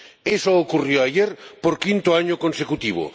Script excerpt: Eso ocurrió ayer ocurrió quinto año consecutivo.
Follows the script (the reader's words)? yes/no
no